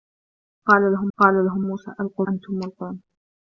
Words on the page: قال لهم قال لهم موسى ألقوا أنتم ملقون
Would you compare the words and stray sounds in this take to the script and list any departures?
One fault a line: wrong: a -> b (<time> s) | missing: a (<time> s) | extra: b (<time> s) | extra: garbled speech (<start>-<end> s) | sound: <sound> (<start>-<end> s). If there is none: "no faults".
no faults